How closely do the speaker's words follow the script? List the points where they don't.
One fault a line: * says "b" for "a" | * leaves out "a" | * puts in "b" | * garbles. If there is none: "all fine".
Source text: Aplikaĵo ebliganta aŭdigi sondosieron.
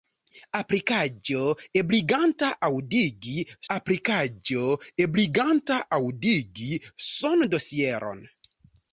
* puts in "aplikaĵo ebliganta aŭdigi"